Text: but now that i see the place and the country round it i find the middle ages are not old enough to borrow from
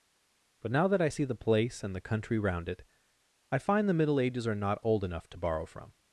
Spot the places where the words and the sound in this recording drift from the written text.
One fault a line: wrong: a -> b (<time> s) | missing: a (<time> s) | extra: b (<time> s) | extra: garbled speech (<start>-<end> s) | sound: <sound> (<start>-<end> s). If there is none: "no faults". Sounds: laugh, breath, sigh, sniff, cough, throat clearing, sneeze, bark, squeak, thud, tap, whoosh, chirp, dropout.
no faults